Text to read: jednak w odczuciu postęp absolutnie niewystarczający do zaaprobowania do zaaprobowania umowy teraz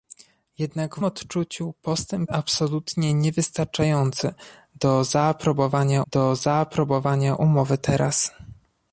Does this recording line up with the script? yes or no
yes